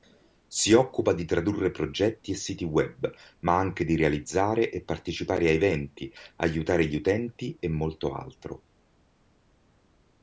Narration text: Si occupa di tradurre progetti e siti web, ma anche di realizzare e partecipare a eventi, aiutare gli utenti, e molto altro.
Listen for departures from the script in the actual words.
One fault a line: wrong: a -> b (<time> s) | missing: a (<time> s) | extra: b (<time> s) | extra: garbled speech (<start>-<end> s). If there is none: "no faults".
no faults